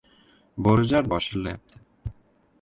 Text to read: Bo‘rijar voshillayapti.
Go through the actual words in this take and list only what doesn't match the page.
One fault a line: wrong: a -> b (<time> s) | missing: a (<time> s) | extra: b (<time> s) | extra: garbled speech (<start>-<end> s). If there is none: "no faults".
no faults